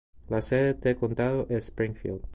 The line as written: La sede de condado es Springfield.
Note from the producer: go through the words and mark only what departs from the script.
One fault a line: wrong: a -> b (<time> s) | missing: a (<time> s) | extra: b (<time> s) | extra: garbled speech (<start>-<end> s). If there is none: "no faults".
no faults